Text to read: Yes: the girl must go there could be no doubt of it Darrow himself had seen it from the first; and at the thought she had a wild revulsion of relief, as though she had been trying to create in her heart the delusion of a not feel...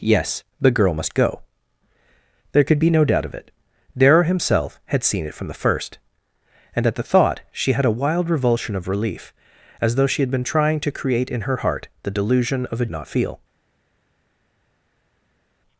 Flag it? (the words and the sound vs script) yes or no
no